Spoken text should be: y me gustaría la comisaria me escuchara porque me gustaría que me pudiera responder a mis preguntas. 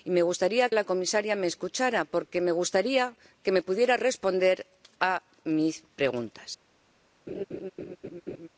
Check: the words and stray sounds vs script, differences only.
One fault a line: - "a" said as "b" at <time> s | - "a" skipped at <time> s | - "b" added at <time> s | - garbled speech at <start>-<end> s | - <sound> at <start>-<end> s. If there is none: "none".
- laugh at 7.3-8.5 s